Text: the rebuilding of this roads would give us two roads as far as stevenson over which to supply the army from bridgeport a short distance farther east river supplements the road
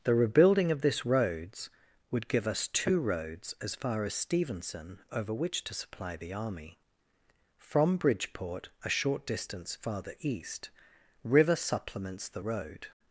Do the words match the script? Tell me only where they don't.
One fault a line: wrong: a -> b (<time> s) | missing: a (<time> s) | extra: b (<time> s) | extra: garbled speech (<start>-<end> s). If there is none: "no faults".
no faults